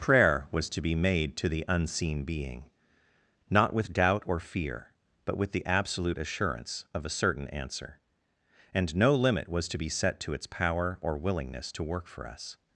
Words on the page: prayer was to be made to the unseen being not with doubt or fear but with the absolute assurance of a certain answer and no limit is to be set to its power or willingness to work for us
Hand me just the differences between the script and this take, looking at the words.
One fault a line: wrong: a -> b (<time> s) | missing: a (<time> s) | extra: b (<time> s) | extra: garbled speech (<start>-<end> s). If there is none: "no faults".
wrong: is -> was (9.5 s)